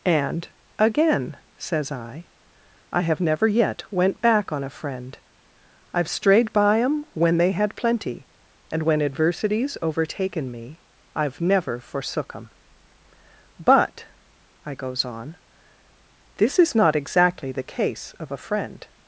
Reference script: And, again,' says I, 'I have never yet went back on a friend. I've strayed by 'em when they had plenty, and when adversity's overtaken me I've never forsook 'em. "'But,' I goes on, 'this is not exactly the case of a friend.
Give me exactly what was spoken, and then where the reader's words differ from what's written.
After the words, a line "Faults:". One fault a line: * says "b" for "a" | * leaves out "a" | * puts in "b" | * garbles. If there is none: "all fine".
And, again,' says I, 'I have never yet went back on a friend. I've strayed by 'em when they had plenty, and when adversity's overtaken me I've never forsook 'em. "'But,' I goes on, 'this is not exactly the case of a friend.
Faults:
all fine